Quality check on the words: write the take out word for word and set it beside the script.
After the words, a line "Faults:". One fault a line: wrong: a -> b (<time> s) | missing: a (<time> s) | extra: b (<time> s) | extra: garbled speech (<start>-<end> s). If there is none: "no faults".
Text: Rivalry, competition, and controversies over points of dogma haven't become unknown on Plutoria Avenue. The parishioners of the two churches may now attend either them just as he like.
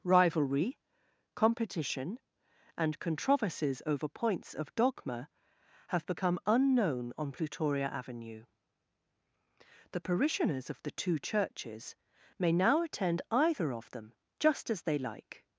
Rivalry, competition, and controversies over points of dogma have become unknown on Plutoria Avenue. The parishioners of the two churches may now attend either of them just as they like.
Faults:
wrong: haven't -> have (5.9 s)
extra: of (13.7 s)
wrong: he -> they (14.8 s)